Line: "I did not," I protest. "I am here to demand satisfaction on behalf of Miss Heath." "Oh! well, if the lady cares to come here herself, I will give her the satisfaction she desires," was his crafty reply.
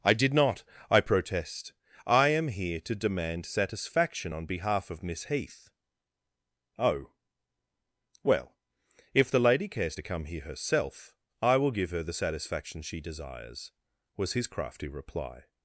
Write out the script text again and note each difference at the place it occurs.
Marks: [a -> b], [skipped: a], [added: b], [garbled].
"I did not," I protest. "I am here to demand satisfaction on behalf of Miss Heath." "Oh! well, if the lady cares to come here herself, I will give her the satisfaction she desires," was his crafty reply.